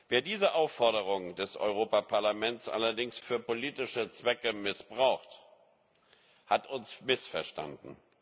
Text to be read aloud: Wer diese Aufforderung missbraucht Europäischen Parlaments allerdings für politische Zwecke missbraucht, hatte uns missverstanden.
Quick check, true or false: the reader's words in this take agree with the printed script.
false